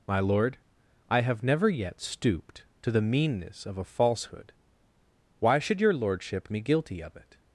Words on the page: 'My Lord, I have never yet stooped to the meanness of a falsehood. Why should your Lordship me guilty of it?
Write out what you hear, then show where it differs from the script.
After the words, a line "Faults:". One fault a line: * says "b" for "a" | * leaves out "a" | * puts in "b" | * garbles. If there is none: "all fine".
'My Lord, I have never yet stooped to the meanness of a falsehood. Why should your Lordship me guilty of it?
Faults:
all fine